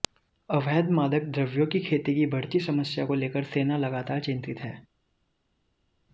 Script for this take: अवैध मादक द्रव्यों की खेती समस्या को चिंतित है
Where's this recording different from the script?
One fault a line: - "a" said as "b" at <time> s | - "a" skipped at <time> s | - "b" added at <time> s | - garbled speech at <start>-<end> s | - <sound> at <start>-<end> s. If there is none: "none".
- "की बढ़ती" added at 2.1 s
- "लेकर सेना लगातार" added at 3.1 s